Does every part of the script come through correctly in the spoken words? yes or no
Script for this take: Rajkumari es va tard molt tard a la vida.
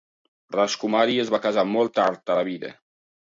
no